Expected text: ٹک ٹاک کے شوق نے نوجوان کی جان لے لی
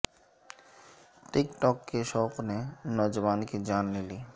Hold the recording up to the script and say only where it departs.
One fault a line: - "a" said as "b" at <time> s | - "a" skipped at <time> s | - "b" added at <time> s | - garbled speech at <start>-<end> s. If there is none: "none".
none